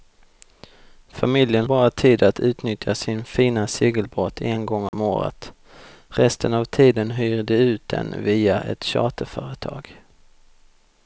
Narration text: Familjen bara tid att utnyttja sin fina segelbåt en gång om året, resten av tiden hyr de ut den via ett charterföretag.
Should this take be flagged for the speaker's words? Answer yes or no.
no